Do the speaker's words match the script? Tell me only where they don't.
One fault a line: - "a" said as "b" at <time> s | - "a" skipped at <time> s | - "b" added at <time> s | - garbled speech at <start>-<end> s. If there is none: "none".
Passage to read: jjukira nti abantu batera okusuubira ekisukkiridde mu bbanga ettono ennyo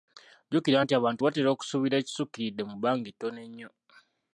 none